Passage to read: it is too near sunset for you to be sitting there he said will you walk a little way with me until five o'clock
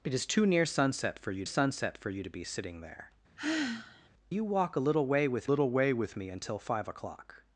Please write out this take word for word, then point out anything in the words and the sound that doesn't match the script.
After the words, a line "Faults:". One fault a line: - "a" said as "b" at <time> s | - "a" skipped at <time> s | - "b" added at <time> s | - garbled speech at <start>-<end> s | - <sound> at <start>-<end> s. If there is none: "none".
it is too near sunset for you sunset for you to be sitting there you walk a little way with little way with me until five o'clock
Faults:
- "sunset for you" added at 1.4 s
- sigh at 3.4-4.1 s
- "he said will you walk a" said as "you walk a little way with" at 4.3 s